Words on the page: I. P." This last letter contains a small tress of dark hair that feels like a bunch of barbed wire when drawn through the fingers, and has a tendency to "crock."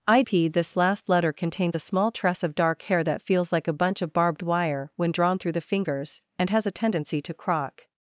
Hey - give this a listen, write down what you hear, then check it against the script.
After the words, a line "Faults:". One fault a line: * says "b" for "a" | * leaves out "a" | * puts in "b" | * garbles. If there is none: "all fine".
I. P." This last letter contains a small tress of dark hair that feels like a bunch of barbed wire when drawn through the fingers, and has a tendency to "crock."
Faults:
all fine